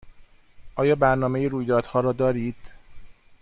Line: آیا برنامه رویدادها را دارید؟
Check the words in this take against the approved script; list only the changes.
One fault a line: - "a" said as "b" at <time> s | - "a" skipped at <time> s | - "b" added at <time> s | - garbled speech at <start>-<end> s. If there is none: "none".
none